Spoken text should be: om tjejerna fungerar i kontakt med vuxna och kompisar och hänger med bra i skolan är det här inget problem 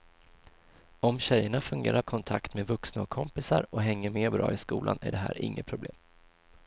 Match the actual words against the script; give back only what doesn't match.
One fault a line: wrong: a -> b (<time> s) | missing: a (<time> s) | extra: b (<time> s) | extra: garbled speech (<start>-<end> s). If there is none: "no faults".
no faults